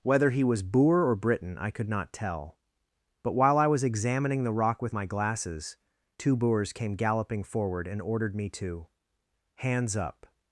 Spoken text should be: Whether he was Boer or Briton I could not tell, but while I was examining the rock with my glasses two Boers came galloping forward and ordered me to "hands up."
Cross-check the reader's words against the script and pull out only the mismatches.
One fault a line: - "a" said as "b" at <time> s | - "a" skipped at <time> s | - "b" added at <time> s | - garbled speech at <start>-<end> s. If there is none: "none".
none